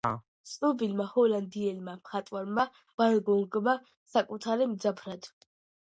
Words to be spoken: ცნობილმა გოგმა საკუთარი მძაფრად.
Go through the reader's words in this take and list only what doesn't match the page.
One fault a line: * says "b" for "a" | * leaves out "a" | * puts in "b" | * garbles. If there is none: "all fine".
* puts in "ჰოლანდიელმა მხატვარმა ვან"